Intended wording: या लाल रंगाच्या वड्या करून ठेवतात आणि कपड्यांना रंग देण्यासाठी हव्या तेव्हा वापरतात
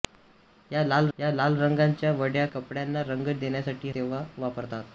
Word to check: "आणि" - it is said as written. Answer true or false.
false